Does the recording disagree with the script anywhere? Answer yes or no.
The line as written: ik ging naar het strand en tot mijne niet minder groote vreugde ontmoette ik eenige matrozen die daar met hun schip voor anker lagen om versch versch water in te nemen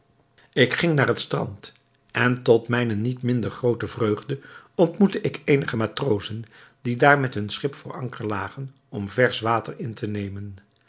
yes